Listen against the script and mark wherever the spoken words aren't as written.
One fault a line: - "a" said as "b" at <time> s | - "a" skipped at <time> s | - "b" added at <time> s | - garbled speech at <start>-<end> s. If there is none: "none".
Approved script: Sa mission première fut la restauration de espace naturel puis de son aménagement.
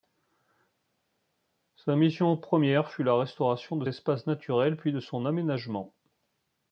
none